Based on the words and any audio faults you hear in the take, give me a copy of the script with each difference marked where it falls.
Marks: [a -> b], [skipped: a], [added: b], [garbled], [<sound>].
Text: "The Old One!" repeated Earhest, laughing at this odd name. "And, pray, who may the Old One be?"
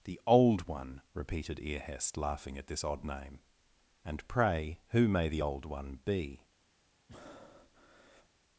"The Old One!" repeated Earhest, laughing at this odd name. "And, pray, who may the Old One be?" [breath]